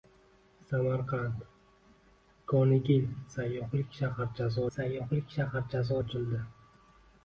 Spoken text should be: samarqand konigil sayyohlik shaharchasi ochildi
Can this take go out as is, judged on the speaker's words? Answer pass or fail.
fail